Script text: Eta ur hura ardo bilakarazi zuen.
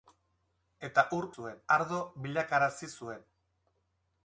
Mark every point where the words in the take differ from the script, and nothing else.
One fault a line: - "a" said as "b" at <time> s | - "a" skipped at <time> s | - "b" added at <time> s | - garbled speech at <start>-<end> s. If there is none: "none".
- "hura" said as "zuen" at 1.4 s